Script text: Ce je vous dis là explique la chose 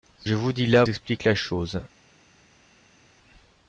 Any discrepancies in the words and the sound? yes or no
no